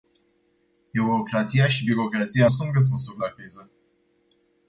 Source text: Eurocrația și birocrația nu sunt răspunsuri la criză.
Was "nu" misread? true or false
true